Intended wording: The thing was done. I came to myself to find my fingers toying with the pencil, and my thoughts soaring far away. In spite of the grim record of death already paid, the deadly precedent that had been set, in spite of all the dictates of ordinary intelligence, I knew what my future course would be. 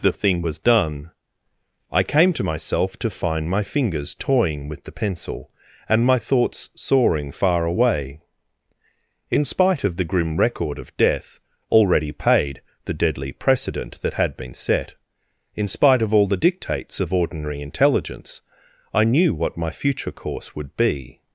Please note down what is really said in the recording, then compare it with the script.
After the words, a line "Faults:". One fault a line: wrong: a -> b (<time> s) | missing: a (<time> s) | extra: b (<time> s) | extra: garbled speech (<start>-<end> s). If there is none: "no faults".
The thing was done. I came to myself to find my fingers toying with the pencil, and my thoughts soaring far away. In spite of the grim record of death already paid, the deadly precedent that had been set, in spite of all the dictates of ordinary intelligence, I knew what my future course would be.
Faults:
no faults